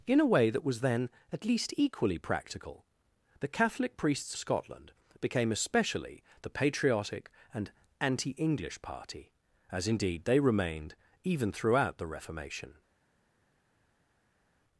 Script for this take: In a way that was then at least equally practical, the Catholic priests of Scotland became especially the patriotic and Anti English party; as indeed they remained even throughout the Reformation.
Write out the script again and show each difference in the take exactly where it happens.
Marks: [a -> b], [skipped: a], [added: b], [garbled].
In a way that was then at least equally practical, the Catholic priests [skipped: of] Scotland became especially the patriotic and Anti English party; as indeed they remained even throughout the Reformation.